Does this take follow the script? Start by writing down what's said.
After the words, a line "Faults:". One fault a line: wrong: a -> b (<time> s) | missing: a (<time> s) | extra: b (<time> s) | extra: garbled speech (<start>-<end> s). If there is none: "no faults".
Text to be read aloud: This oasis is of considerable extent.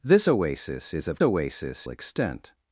This oasis is of oasis extent.
Faults:
wrong: considerable -> oasis (1.2 s)